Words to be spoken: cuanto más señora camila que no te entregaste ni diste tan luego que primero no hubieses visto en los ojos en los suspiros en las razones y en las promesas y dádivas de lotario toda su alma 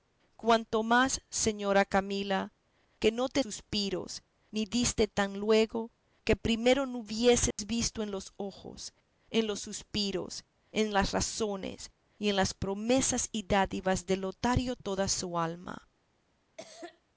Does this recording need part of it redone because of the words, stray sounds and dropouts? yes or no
yes